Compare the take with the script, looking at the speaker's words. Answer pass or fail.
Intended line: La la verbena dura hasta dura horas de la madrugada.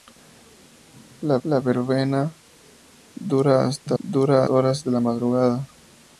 pass